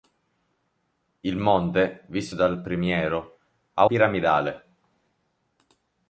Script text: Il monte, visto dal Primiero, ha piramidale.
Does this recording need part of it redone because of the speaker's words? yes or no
no